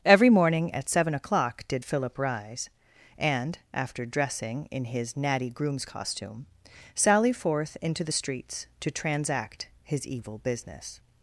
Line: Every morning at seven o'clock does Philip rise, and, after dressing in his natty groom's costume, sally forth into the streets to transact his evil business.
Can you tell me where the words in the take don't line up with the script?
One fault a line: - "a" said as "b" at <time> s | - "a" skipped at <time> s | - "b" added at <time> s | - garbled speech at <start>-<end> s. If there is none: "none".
- "does" said as "did" at 1.7 s